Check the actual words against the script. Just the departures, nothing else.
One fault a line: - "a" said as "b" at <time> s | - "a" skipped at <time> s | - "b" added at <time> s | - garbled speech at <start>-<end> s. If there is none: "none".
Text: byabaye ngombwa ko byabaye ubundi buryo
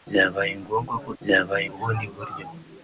none